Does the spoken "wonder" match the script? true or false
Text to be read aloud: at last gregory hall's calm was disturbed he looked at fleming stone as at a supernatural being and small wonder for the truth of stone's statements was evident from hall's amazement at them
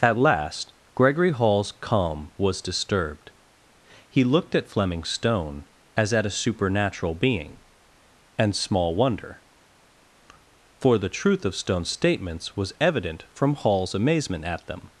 true